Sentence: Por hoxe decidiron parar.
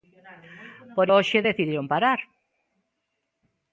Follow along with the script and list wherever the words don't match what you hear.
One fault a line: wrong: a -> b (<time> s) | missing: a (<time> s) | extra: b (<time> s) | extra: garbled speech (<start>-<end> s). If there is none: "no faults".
no faults